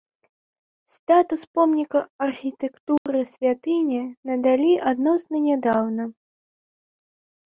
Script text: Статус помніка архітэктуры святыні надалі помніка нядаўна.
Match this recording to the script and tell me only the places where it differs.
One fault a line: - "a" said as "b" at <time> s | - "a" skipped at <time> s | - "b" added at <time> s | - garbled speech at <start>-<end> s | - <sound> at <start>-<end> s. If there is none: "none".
- dropout at 3.0-3.1 s
- "помніка" said as "адносна" at 4.9 s